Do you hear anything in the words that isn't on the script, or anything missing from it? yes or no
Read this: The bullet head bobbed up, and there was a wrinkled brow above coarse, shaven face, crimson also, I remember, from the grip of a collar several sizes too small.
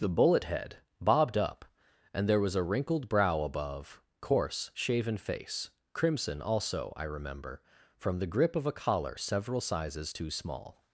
no